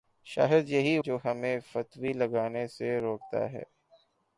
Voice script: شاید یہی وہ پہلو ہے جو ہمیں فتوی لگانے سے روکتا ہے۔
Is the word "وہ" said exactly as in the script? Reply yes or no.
no